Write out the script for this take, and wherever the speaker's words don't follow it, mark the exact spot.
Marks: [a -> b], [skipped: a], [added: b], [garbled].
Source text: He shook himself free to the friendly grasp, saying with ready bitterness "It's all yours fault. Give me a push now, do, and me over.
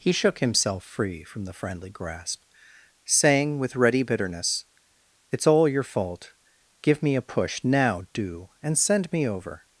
He shook himself free [to -> from] the friendly grasp, saying with ready bitterness "It's all [yours -> your] fault. Give me a push now, do, and [added: send] me over.